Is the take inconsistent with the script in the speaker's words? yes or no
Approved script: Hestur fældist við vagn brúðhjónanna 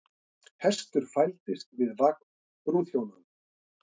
no